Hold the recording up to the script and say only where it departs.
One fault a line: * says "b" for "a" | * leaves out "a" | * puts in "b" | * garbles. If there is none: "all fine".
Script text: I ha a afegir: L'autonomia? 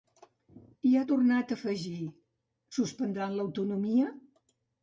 * puts in "tornat"
* puts in "Suspendran"